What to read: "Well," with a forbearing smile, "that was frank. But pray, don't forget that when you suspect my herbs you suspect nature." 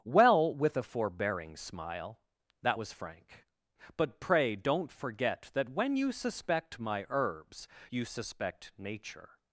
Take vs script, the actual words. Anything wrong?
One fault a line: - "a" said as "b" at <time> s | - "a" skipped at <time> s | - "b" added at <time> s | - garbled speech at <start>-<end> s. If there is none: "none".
none